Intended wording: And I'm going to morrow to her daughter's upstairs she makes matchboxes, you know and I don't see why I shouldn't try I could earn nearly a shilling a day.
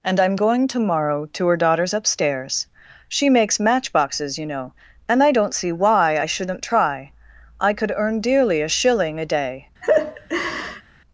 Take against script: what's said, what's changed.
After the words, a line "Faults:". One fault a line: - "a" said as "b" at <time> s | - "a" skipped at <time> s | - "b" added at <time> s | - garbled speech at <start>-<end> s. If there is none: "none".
And I'm going to morrow to her daughter's upstairs she makes matchboxes, you know and I don't see why I shouldn't try I could earn dearly a shilling a day.
Faults:
- "nearly" said as "dearly" at 8.2 s